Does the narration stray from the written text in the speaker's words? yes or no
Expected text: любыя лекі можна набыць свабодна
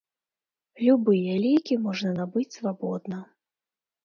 no